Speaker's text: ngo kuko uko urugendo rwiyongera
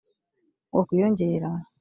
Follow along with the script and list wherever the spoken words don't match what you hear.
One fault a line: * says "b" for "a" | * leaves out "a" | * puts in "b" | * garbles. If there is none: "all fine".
* leaves out "kuko uko urugendo"